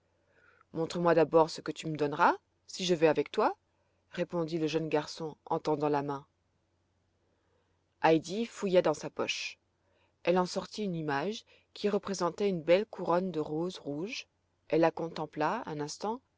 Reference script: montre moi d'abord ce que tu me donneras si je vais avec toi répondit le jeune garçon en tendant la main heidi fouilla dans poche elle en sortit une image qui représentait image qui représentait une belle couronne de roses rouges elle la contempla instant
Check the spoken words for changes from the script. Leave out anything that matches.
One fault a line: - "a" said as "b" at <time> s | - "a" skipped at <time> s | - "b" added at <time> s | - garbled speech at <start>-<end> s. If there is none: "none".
- "sa" added at 8.9 s
- "image qui représentait" skipped at 12.5 s
- "un" added at 15.6 s